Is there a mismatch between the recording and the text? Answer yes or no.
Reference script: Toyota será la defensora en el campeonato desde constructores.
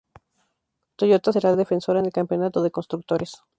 yes